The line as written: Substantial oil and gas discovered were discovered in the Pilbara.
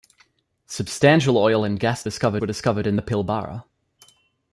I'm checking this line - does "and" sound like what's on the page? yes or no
yes